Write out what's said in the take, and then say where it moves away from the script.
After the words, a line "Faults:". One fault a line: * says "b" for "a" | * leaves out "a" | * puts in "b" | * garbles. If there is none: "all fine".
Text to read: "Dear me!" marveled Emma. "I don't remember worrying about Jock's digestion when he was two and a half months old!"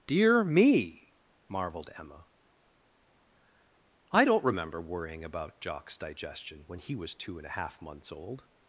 "Dear me!" marveled Emma. "I don't remember worrying about Jock's digestion when he was two and a half months old!"
Faults:
all fine